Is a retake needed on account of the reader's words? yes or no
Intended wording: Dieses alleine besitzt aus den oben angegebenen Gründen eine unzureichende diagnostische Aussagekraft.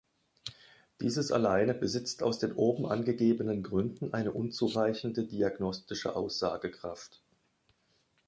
no